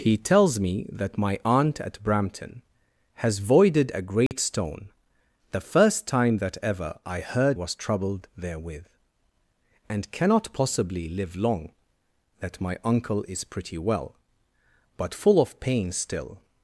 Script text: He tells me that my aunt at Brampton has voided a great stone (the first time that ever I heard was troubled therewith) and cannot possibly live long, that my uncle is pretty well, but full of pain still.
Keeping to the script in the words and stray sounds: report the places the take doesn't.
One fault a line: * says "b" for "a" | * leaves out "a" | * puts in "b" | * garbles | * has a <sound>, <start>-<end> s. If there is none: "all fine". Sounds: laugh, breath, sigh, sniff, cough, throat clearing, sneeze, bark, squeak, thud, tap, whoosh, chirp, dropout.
* has a dropout, 4.3-4.3 s